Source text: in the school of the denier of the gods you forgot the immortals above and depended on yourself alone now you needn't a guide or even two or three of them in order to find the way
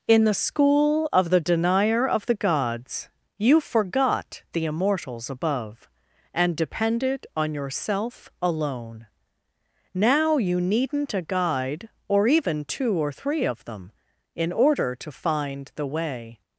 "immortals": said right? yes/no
yes